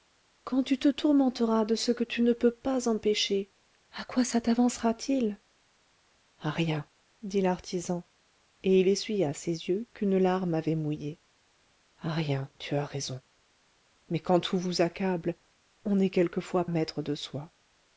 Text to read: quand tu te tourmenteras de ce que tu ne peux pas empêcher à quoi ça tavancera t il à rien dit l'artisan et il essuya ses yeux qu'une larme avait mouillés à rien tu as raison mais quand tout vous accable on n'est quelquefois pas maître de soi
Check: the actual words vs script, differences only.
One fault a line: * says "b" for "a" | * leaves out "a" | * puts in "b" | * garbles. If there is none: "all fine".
* leaves out "pas"